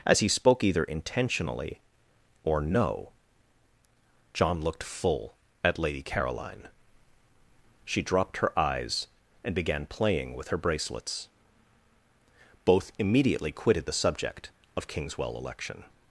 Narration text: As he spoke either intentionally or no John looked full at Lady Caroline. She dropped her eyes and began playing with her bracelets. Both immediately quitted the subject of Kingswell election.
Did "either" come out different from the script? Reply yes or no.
no